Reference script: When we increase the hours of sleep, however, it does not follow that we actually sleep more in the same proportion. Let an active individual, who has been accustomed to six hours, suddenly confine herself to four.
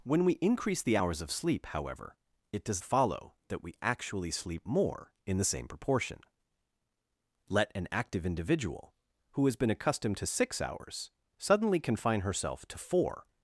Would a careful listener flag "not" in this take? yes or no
yes